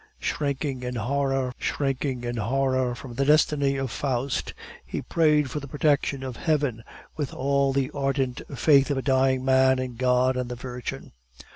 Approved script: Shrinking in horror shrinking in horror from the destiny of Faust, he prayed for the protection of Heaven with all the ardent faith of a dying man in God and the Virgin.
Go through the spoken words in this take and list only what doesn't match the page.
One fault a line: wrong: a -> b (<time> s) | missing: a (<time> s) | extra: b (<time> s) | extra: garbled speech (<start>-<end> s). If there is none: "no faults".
no faults